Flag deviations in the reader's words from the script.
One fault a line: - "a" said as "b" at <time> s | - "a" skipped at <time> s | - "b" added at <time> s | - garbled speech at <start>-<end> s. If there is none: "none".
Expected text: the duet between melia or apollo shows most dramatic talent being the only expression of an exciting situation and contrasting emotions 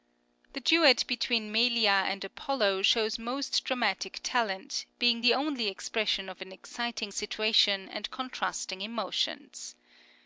- "or" said as "and" at 2.1 s